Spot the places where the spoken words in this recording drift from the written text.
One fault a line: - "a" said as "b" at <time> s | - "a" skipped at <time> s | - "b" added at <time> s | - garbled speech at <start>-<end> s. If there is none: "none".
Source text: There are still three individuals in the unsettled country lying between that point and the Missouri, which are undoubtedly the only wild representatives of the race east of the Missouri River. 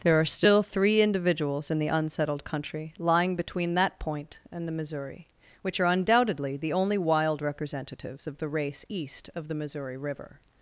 none